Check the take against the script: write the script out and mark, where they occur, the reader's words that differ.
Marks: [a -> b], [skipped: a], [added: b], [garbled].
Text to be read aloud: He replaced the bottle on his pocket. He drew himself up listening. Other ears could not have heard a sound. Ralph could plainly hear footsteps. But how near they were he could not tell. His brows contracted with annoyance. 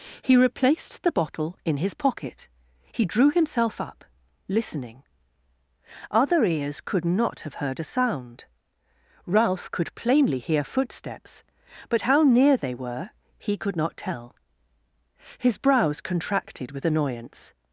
He replaced the bottle [on -> in] his pocket. He drew himself up listening. Other ears could not have heard a sound. Ralph could plainly hear footsteps. But how near they were he could not tell. His brows contracted with annoyance.